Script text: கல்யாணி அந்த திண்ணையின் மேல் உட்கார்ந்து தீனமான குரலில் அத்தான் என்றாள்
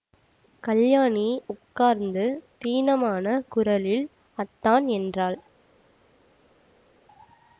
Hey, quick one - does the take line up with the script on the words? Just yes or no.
no